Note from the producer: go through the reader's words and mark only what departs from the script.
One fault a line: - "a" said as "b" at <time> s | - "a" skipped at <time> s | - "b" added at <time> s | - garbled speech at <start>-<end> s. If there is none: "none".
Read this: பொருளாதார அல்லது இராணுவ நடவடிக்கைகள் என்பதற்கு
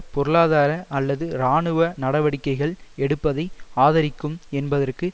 - "எடுப்பதை ஆதரிக்கும்" added at 3.0 s